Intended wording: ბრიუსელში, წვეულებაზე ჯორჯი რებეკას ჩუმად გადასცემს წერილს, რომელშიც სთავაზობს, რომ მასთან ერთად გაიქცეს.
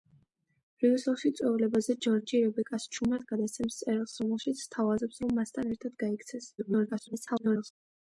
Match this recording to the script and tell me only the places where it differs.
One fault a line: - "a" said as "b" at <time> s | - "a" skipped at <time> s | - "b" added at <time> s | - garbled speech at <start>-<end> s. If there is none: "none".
- garbled speech at 6.6-7.7 s